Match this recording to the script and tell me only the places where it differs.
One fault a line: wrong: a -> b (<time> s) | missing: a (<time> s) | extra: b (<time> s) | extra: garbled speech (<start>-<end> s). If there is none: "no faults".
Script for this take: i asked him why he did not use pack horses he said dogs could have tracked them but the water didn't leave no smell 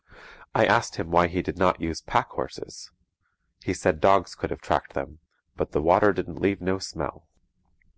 no faults